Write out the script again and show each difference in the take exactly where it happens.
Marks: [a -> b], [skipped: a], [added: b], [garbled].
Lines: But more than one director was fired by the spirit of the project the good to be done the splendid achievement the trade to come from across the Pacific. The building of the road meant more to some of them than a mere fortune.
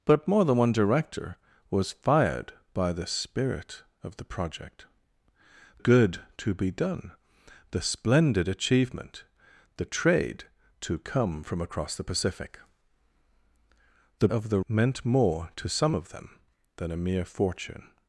But more than one director was fired by the spirit of the project [skipped: the] good to be done the splendid achievement the trade to come from across the Pacific. The [skipped: building] of the [skipped: road] meant more to some of them than a mere fortune.